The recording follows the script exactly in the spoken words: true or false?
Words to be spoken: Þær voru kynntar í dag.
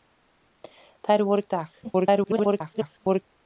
false